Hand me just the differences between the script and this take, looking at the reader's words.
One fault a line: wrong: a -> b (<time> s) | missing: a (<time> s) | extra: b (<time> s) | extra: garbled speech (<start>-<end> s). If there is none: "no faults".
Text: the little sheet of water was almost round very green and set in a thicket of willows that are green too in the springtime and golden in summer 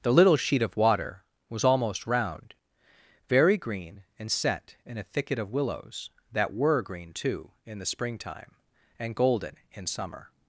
wrong: are -> were (6.5 s)